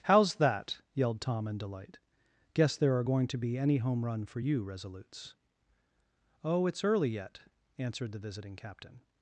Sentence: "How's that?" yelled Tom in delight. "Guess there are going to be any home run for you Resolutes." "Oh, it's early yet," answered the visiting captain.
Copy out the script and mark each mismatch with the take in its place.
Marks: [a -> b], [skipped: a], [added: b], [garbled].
"How's that?" yelled Tom in delight. "Guess there are going to be any home run for you Resolutes." "Oh, it's early yet," answered the visiting captain.